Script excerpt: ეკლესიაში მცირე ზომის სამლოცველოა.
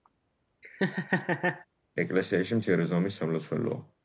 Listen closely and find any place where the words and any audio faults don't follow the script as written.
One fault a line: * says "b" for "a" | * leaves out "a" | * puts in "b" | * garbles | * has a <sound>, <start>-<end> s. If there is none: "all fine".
* has a laugh, 0.6-1.7 s